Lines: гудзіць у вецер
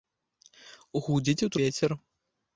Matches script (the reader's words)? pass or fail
pass